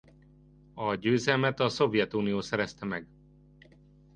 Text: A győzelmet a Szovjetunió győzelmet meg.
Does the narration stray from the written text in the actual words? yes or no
yes